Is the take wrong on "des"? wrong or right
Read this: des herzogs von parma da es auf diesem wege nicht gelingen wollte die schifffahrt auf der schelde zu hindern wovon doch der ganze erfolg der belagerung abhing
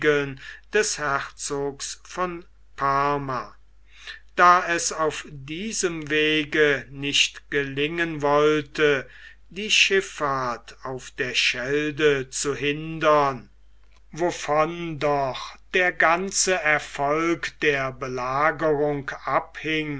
right